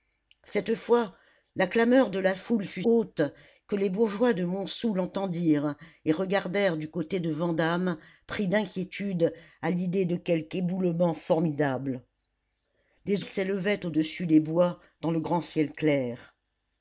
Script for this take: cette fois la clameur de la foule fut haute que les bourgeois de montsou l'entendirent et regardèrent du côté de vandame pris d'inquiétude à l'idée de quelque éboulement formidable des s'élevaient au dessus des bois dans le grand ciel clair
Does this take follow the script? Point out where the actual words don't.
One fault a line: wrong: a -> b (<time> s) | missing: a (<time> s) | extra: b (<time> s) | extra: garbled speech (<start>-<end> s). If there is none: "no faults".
no faults